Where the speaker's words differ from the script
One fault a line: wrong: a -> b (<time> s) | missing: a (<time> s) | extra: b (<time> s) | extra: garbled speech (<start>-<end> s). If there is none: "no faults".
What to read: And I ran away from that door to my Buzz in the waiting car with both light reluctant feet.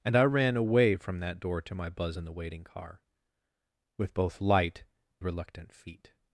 no faults